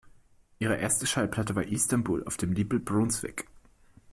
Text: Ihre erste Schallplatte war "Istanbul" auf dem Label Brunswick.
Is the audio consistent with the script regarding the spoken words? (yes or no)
yes